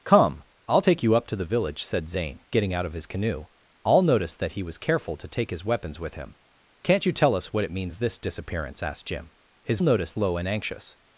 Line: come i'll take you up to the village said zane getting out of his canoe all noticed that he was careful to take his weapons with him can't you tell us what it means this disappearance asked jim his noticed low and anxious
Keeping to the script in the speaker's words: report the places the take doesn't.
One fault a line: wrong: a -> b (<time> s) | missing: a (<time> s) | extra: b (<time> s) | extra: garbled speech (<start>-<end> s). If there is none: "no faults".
no faults